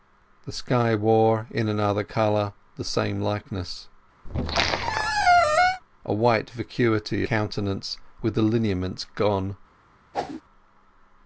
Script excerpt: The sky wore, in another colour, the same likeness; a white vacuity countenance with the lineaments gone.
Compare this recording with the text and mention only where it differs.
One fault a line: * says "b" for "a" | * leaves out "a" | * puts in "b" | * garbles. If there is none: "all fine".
all fine